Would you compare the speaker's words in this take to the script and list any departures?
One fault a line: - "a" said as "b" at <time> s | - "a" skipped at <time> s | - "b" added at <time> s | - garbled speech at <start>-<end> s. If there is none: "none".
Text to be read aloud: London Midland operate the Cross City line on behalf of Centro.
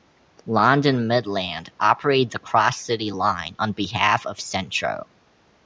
none